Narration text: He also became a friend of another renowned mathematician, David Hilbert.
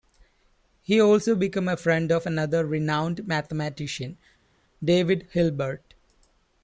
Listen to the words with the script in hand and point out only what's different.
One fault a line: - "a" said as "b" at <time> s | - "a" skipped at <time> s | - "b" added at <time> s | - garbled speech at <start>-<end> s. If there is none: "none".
none